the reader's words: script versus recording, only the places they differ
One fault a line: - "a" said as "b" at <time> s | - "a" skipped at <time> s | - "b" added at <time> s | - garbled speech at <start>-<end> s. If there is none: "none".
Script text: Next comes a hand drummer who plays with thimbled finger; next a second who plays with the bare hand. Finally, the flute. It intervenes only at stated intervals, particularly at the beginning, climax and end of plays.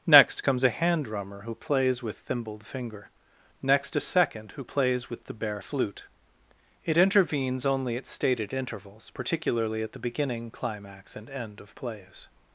- "hand Finally the" skipped at 5.6 s